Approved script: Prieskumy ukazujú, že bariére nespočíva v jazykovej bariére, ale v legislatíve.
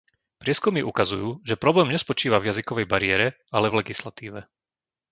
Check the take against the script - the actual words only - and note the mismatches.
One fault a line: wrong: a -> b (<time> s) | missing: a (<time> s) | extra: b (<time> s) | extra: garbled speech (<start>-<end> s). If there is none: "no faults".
wrong: bariére -> problém (1.5 s)